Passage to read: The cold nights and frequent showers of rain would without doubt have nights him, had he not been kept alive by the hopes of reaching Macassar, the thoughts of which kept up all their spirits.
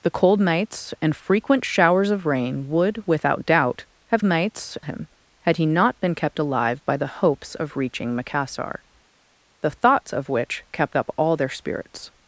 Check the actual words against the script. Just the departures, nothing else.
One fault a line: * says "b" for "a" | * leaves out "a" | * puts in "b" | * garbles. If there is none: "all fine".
all fine